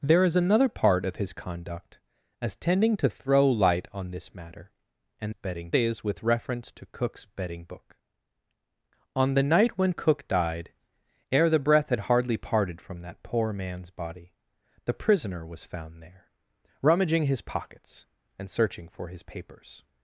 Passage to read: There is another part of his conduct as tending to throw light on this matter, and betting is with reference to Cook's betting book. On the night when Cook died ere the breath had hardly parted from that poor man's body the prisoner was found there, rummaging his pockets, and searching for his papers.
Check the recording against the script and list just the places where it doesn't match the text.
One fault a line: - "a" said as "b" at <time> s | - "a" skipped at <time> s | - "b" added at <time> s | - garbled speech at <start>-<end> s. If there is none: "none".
none